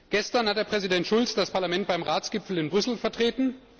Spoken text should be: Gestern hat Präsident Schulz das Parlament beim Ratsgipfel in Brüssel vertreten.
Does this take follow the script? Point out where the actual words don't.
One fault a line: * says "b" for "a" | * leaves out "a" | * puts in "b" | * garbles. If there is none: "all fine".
all fine